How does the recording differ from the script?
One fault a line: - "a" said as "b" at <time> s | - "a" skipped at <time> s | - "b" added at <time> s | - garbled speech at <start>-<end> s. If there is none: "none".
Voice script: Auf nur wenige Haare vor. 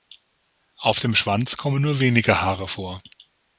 - "dem Schwanz kommen" added at 1.0 s